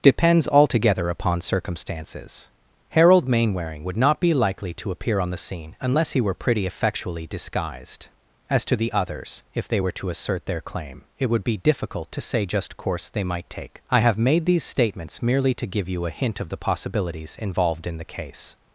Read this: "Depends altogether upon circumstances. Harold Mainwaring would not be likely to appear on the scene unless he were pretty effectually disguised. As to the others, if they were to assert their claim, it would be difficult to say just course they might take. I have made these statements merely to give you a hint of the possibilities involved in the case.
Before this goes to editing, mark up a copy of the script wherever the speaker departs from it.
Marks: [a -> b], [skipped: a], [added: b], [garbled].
"Depends altogether upon circumstances. Harold Mainwaring would not be likely to appear on the scene unless he were pretty effectually disguised. As to the others, if they were to assert their claim, it would be difficult to say just course they might take. I have made these statements merely to give you a hint of the possibilities involved in the case.